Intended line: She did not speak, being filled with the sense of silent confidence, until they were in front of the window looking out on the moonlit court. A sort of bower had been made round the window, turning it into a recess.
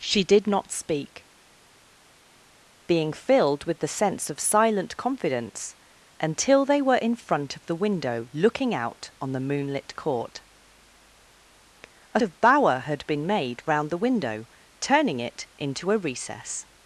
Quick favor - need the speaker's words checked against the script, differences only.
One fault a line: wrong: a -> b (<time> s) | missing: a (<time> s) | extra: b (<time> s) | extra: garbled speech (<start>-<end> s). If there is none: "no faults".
missing: sort (12.2 s)